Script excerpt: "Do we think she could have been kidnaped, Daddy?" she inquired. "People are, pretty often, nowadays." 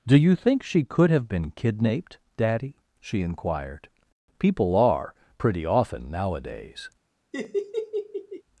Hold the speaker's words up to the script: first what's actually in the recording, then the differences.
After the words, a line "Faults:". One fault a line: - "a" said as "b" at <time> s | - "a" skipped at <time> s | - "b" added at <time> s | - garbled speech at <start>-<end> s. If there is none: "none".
"Do you think she could have been kidnaped, Daddy?" she inquired. "People are, pretty often, nowadays."
Faults:
- "we" said as "you" at 0.2 s